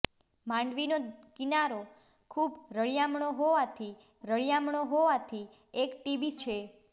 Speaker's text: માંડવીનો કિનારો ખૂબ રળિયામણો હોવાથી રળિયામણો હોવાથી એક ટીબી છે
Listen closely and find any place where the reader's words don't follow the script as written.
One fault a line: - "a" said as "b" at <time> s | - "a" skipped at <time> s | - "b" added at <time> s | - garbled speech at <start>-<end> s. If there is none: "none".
none